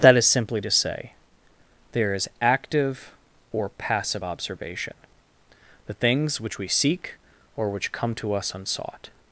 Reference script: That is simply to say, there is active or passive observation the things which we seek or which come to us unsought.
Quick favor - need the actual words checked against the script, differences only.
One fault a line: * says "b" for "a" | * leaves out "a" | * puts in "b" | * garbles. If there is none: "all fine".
all fine